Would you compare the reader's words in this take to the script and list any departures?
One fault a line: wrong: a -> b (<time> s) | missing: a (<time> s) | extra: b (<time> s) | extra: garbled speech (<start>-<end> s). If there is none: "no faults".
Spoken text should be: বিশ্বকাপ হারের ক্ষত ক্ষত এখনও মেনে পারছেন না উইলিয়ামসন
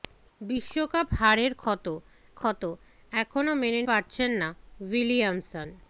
no faults